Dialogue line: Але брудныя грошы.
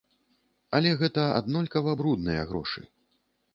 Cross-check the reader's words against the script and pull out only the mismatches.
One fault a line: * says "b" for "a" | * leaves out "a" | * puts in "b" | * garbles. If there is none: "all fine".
* puts in "гэта аднолькава"